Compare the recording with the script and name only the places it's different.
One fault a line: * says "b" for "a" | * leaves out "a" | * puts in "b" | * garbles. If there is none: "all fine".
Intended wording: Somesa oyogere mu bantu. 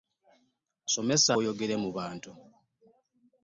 all fine